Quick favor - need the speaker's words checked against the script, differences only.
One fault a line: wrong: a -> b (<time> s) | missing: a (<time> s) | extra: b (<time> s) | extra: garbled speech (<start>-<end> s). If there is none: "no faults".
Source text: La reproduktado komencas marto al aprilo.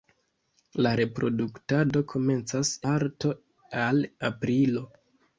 no faults